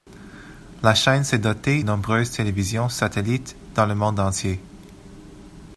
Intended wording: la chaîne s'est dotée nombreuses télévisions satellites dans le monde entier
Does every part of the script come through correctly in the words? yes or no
yes